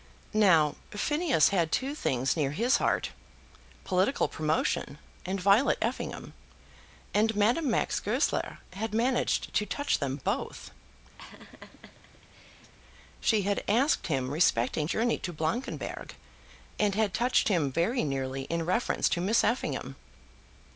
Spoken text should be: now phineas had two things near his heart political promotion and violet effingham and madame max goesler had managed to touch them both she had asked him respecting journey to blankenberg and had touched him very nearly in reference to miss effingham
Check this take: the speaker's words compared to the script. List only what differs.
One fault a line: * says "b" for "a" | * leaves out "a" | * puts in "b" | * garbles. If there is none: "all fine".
all fine